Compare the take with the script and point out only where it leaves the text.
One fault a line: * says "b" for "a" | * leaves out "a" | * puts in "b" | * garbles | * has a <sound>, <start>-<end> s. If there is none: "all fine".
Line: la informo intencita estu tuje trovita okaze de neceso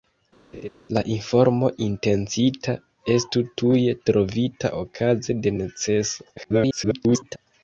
* has a laugh, 0.5-0.7 s
* garbles